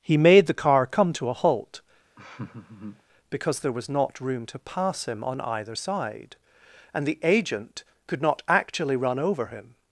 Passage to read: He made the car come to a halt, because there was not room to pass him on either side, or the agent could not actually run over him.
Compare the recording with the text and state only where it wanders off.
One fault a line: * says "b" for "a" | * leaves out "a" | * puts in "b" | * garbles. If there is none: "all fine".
* says "and" for "or"